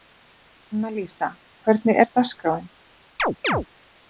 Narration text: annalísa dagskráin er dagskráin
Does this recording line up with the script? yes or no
no